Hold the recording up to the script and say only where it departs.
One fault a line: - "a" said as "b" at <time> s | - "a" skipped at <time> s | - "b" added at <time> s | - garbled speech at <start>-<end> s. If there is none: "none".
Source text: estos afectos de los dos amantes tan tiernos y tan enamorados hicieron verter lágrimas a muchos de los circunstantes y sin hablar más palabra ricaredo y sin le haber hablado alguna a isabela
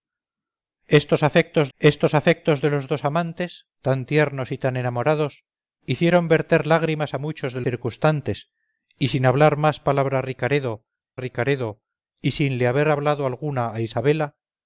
- "estos afectos" added at 1.8 s
- "los" skipped at 7.6 s
- "ricaredo" added at 11.2 s